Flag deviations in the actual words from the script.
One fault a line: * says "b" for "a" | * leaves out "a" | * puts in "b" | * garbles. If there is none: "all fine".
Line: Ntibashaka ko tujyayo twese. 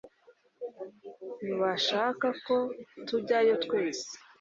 all fine